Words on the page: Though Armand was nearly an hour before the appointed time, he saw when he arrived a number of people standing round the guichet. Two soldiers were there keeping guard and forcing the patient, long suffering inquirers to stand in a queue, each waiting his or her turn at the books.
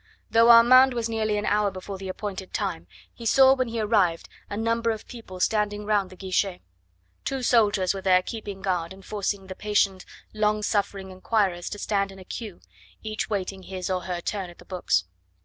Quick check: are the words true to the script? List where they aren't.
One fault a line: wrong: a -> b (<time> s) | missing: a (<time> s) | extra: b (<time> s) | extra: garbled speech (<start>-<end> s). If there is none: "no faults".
no faults